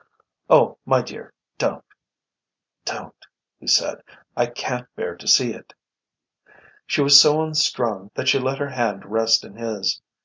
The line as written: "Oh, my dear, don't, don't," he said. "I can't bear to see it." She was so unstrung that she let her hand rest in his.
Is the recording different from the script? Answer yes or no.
no